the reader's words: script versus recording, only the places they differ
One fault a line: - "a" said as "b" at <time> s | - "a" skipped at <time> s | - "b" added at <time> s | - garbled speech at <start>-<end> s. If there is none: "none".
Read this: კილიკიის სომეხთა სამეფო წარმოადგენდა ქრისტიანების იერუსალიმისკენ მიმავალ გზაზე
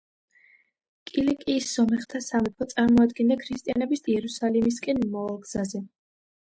none